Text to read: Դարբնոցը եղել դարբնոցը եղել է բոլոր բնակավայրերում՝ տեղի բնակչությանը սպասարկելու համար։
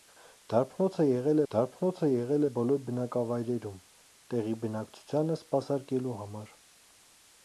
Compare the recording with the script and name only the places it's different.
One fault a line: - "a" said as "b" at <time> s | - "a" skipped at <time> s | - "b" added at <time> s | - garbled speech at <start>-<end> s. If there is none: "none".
none